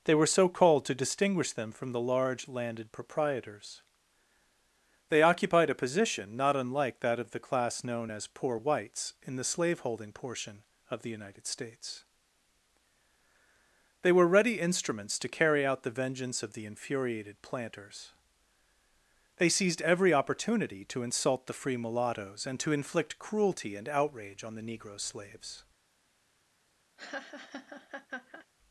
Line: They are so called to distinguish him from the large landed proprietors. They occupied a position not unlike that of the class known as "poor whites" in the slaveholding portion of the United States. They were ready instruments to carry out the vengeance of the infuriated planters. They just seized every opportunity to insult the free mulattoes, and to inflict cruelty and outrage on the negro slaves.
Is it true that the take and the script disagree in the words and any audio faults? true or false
true